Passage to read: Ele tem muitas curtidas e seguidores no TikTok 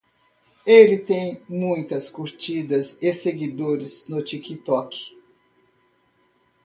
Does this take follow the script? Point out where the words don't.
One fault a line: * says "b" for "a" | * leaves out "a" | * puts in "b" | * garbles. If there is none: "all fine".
all fine